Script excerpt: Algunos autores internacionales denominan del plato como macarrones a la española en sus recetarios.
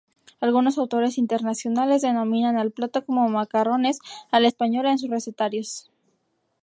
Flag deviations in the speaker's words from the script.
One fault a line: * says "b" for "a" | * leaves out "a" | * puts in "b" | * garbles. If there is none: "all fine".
* says "al" for "del"